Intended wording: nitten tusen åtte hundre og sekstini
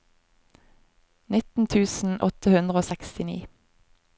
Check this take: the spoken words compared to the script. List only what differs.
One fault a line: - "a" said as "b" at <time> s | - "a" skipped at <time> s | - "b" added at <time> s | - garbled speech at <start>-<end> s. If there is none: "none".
none